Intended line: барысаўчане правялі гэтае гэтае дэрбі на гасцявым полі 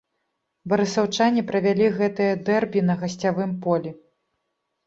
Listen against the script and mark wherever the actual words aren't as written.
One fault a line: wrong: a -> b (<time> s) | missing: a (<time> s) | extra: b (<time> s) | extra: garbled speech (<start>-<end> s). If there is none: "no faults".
missing: гэтае (2.3 s)